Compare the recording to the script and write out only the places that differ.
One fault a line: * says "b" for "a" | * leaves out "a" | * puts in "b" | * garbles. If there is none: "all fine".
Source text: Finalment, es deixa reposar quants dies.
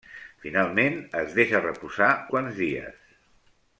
all fine